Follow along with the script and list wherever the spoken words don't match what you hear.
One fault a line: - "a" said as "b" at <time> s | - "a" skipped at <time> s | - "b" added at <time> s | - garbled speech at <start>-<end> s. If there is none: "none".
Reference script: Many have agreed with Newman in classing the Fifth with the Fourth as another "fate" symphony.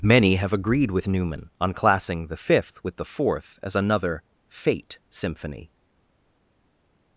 - "in" said as "on" at 1.6 s